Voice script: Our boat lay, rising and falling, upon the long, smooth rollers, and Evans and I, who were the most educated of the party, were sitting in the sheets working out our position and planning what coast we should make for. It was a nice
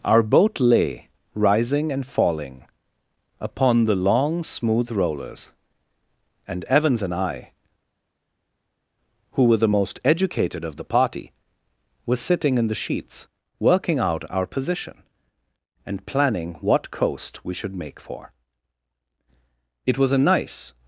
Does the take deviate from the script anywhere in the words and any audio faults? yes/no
no